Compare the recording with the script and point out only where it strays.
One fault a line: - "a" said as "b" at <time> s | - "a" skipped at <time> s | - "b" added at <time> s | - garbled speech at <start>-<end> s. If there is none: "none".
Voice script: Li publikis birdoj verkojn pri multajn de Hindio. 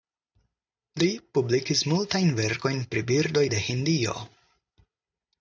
- "birdoj" said as "multajn" at 1.9 s
- "multajn" said as "birdoj" at 3.1 s